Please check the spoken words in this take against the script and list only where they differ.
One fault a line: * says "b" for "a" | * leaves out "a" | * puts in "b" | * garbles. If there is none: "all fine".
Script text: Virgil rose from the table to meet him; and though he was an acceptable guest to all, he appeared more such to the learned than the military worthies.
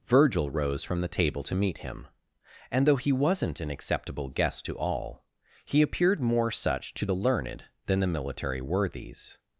* says "wasn't" for "was"